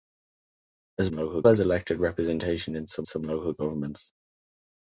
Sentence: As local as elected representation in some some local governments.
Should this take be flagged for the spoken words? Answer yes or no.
no